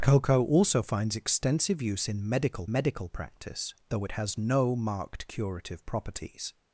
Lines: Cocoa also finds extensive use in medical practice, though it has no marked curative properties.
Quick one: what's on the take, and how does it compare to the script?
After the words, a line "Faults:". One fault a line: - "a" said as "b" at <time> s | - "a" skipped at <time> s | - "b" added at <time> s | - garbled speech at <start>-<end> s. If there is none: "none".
Cocoa also finds extensive use in medical medical practice, though it has no marked curative properties.
Faults:
- "medical" added at 2.7 s